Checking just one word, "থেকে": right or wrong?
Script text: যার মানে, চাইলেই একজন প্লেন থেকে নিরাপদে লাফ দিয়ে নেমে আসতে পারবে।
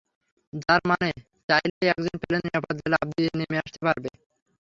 wrong